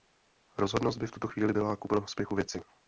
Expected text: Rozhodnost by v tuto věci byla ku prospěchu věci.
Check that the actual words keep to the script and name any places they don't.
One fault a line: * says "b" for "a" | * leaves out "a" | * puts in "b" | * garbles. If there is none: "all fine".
* says "chvíli" for "věci"